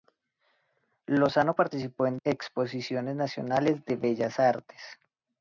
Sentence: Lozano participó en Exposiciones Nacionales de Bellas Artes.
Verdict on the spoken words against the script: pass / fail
pass